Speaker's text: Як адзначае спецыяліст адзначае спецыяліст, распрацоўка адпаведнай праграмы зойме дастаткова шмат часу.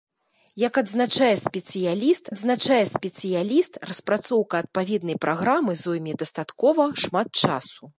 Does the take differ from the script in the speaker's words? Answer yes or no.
no